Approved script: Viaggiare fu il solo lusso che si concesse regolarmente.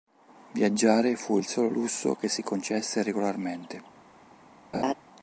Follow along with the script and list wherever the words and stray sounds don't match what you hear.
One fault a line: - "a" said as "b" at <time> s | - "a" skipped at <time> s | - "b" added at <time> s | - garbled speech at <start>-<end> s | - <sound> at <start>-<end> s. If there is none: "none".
- laugh at 4.7-4.9 s